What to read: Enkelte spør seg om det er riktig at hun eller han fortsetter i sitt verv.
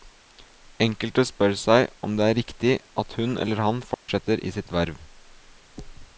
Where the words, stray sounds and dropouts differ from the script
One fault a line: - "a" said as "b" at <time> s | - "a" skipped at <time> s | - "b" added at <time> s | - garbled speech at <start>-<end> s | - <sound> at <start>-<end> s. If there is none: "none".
- dropout at 3.9-4.1 s